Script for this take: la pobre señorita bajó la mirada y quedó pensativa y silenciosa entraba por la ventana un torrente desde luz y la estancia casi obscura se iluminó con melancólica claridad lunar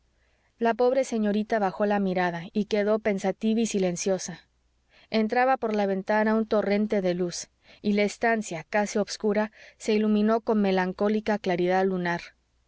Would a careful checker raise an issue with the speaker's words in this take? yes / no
yes